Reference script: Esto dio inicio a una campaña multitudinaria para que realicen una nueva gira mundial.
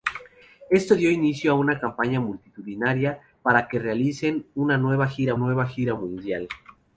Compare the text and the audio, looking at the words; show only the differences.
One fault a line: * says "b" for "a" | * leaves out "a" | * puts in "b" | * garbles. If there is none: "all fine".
* puts in "nueva gira"